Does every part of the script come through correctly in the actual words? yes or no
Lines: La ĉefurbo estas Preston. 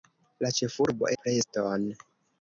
no